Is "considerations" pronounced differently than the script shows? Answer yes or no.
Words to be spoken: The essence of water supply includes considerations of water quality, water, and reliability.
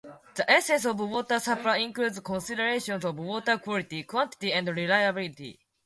no